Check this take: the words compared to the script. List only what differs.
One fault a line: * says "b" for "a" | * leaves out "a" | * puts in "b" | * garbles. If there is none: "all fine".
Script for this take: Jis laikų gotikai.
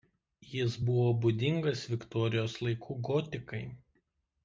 * puts in "buvo būdingas Viktorijos"